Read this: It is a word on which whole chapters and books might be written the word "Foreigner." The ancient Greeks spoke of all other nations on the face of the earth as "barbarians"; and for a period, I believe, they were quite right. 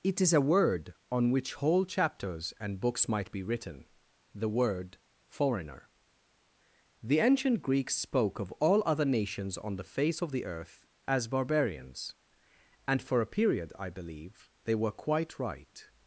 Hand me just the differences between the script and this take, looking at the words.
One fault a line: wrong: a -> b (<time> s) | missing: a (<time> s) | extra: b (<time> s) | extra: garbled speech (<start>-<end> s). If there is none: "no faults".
no faults